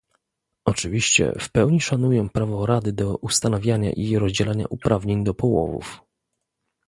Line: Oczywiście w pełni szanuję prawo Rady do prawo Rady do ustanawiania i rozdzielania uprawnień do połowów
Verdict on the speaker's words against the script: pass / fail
fail